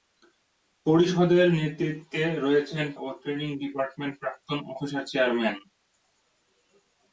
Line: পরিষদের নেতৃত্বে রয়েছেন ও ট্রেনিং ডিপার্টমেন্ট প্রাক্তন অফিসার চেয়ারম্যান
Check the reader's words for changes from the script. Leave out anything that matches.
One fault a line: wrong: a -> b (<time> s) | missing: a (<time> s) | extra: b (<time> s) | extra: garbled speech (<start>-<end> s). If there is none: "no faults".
no faults